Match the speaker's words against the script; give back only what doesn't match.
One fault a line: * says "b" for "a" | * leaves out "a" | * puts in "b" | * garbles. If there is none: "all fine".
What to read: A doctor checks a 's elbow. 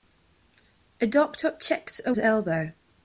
all fine